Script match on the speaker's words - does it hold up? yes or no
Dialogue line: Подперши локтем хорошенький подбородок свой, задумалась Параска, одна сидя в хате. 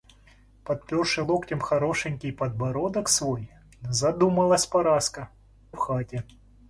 no